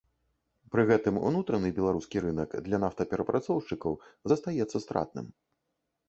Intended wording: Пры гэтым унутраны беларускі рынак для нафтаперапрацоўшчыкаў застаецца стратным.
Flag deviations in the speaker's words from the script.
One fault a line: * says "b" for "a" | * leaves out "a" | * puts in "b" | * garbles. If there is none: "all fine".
all fine